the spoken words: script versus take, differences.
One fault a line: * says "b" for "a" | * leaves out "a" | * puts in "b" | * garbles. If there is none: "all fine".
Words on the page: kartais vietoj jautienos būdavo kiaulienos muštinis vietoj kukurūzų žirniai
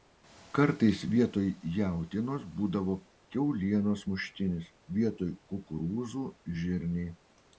all fine